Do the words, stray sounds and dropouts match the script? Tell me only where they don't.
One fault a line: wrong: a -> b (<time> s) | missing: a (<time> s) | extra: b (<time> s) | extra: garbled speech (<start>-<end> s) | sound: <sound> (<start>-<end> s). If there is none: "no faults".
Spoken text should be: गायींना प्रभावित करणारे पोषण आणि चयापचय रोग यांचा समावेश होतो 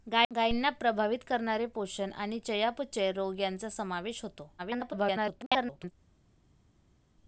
extra: garbled speech (4.6-5.9 s)